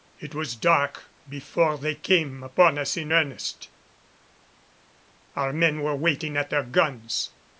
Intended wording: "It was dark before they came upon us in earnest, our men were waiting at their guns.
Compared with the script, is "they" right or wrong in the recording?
right